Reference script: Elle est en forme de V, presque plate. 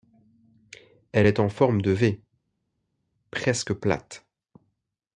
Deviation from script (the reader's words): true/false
false